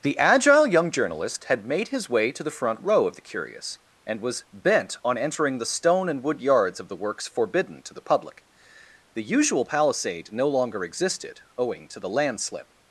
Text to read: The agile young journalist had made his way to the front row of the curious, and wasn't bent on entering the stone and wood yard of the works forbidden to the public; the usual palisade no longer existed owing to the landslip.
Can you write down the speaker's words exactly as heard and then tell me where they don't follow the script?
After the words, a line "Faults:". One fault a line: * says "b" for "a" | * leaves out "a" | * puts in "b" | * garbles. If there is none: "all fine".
The agile young journalist had made his way to the front row of the curious, and was bent on entering the stone and wood yards of the works forbidden to the public; the usual palisade no longer existed owing to the landslip.
Faults:
* says "was" for "wasn't"
* says "yards" for "yard"